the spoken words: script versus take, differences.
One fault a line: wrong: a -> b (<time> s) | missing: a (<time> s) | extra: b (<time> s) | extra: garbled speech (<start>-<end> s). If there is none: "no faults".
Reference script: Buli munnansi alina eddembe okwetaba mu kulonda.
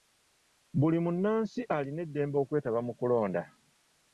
no faults